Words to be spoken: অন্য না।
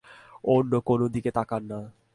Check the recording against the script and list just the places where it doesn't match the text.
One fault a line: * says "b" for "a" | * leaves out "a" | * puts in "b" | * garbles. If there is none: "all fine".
* puts in "কোনো দিকে তাকান"